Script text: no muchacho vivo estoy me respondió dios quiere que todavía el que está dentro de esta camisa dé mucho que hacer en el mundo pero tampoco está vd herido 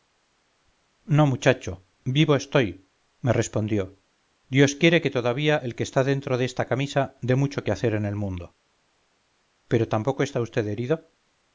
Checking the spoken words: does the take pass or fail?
pass